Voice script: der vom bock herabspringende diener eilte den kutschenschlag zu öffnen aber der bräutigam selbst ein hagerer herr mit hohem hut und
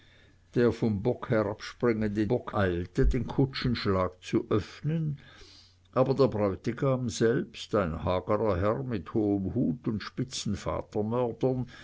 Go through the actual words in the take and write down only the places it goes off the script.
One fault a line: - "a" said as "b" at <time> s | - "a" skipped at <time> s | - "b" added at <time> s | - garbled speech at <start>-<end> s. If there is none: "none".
- "diener" said as "bock" at 2.3 s